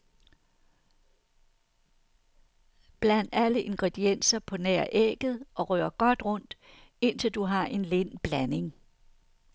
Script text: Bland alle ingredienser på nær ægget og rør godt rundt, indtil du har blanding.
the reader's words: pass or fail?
fail